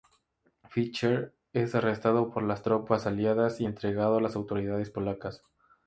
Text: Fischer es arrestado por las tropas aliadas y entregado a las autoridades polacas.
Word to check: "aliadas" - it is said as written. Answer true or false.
true